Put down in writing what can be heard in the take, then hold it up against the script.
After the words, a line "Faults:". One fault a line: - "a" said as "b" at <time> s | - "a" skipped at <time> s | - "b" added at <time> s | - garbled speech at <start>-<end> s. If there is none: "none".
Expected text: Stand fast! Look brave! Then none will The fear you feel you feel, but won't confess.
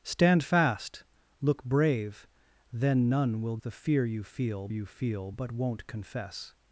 Stand fast! Look brave! Then none will The fear you feel you feel, but won't confess.
Faults:
none